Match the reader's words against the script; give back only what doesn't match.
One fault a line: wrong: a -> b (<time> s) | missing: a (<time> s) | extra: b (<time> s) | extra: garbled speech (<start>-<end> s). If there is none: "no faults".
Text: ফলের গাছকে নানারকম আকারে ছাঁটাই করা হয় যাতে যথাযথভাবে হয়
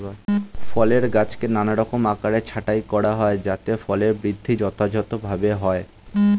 extra: ফলের বৃদ্ধি (3.8 s)